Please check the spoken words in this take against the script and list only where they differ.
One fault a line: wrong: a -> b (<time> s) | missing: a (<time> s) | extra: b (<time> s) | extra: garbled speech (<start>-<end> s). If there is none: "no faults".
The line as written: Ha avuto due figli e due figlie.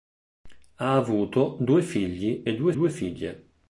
extra: due (2.7 s)